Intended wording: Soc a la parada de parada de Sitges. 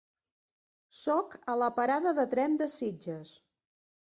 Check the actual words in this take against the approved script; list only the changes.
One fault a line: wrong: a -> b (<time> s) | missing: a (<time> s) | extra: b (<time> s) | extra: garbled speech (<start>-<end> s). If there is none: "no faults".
wrong: parada -> tren (2.3 s)